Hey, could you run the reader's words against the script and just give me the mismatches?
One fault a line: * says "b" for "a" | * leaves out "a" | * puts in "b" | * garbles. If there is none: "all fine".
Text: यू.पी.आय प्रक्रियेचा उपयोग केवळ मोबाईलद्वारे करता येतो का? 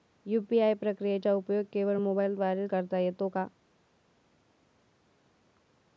all fine